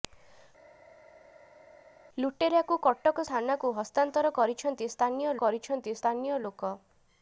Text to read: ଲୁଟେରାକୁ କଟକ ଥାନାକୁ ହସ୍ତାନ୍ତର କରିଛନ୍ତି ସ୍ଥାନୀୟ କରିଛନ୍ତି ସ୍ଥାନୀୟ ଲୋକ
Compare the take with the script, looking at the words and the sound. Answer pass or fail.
pass